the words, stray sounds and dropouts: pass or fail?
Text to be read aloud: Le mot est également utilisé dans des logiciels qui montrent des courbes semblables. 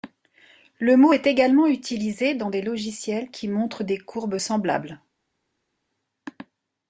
pass